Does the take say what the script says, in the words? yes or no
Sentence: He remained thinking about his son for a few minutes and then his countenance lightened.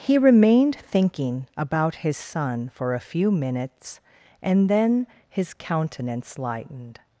yes